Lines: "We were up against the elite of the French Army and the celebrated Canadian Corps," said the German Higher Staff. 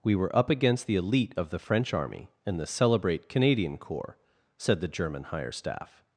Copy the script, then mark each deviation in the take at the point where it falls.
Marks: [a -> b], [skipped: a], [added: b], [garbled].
"We were up against the elite of the French Army and the [celebrated -> celebrate] Canadian Corps," said the German Higher Staff.